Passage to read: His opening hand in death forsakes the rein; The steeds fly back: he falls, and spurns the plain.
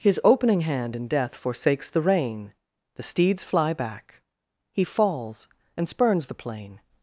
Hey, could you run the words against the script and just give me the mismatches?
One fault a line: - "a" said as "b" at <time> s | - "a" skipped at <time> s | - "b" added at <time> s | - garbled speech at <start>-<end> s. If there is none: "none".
none